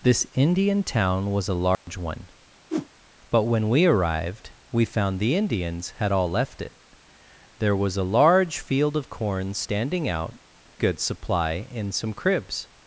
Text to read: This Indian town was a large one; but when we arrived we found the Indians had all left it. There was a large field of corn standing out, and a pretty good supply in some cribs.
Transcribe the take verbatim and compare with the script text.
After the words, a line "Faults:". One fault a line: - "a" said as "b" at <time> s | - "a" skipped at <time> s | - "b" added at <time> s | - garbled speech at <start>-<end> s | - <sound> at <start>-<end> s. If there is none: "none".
This Indian town was a large one; but when we arrived we found the Indians had all left it. There was a large field of corn standing out, good supply in some cribs.
Faults:
- dropout at 1.7-1.9 s
- whoosh at 2.7-2.9 s
- "and a pretty" skipped at 10.3 s